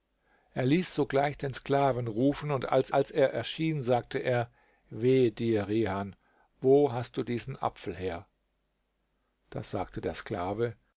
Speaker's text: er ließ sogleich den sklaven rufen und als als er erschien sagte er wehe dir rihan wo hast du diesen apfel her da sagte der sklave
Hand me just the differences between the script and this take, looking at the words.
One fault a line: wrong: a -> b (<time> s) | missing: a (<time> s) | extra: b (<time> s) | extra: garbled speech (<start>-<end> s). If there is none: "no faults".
no faults